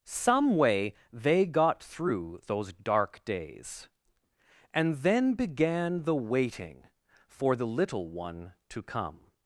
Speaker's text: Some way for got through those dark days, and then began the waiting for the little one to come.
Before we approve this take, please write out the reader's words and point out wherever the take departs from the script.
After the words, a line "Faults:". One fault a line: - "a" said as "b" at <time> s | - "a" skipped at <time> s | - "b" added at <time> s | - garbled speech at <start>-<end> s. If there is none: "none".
Some way they got through those dark days, and then began the waiting for the little one to come.
Faults:
- "for" said as "they" at 1.1 s